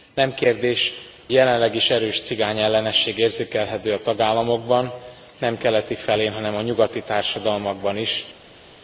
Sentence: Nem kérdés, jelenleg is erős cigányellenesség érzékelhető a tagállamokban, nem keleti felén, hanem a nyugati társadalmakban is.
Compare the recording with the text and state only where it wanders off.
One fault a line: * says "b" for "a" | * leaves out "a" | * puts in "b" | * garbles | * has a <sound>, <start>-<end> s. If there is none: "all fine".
all fine